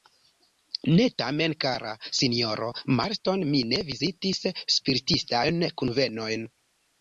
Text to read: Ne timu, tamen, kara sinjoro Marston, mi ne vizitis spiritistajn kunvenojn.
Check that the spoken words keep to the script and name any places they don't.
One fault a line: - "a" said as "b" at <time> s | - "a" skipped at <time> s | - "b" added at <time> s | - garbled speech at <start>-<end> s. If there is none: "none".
- "timu" skipped at 1.0 s